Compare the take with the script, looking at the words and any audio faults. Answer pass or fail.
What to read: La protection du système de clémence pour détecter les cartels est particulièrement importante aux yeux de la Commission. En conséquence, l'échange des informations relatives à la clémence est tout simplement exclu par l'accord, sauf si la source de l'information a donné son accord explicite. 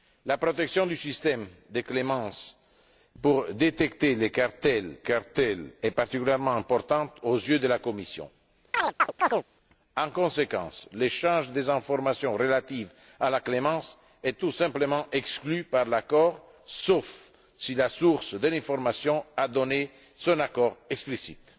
fail